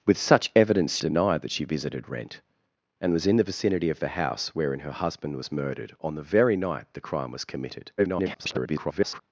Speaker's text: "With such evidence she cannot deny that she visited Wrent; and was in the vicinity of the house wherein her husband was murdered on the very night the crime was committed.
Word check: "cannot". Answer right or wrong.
wrong